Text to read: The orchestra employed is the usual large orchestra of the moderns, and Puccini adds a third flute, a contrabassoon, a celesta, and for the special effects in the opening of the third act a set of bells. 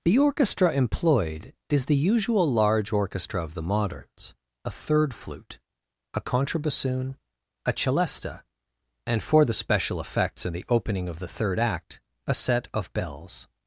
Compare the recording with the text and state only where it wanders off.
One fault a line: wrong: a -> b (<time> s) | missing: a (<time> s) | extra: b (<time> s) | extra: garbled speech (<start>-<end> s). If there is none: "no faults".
missing: and Puccini adds (4.3 s)